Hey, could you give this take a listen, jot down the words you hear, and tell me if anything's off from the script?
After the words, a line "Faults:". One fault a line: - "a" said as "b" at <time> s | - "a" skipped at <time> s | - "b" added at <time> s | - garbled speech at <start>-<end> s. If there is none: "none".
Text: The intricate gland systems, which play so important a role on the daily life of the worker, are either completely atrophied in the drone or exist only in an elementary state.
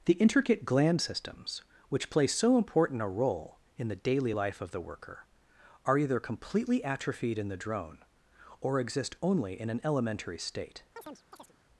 The intricate gland systems, which play so important a role in the daily life of the worker, are either completely atrophied in the drone or exist only in an elementary state.
Faults:
- "on" said as "in" at 3.8 s